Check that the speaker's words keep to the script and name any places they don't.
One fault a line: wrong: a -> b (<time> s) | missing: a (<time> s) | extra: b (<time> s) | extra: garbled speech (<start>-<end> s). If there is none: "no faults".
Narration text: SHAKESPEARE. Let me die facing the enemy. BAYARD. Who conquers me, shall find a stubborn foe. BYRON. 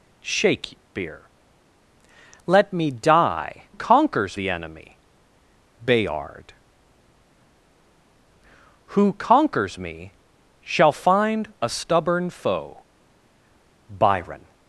wrong: facing -> conquers (3.7 s)